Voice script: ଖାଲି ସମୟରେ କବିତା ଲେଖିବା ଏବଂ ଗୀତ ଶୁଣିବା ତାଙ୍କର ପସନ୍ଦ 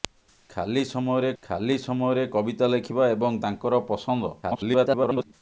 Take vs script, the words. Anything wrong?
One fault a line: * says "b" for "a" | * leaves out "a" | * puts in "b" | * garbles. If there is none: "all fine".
* puts in "ଖାଲି ସମୟରେ"
* leaves out "ଗୀତ ଶୁଣିବା"
* garbles